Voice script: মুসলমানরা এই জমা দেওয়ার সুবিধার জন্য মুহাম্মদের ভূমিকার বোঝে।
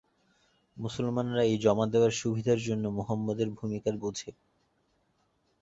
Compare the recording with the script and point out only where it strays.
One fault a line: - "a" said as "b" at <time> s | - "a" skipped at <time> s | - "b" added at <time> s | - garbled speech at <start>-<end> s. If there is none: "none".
none